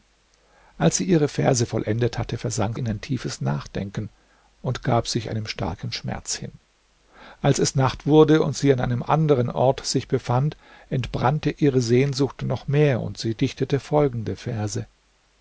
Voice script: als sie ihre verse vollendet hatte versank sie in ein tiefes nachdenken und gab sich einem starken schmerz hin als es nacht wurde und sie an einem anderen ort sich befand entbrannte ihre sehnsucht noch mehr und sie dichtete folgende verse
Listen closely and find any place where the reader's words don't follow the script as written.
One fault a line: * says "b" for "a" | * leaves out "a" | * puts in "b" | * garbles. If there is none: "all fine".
* leaves out "sie"